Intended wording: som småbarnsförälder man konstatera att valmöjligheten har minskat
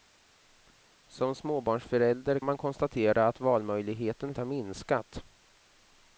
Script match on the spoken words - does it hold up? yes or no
yes